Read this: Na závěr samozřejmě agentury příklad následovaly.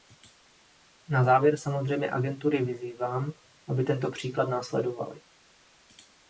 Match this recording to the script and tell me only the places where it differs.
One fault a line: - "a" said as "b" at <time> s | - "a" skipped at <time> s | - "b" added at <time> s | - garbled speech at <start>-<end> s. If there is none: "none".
- "vyzývám aby tento" added at 2.6 s